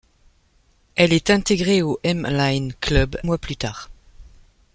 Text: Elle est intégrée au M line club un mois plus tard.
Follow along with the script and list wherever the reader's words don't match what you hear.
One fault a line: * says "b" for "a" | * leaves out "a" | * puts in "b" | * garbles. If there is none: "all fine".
* leaves out "un"